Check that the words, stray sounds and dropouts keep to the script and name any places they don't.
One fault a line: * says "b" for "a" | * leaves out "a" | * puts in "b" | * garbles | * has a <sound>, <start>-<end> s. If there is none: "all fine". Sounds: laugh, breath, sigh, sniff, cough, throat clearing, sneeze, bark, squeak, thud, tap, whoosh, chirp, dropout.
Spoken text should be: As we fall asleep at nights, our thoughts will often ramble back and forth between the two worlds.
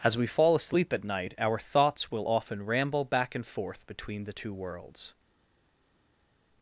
* says "night" for "nights"